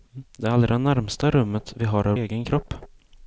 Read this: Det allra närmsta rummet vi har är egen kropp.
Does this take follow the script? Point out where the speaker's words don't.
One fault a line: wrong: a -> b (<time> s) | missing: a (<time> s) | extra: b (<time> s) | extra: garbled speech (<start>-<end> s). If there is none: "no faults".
no faults